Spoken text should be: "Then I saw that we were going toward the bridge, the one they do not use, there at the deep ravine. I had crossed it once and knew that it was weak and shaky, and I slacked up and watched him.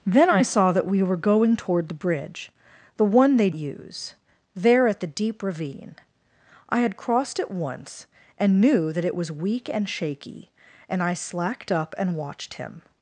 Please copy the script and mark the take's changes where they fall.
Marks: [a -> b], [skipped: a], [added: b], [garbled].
"Then I saw that we were going toward the bridge, the one they [skipped: do not] use, there at the deep ravine. I had crossed it once and knew that it was weak and shaky, and I slacked up and watched him.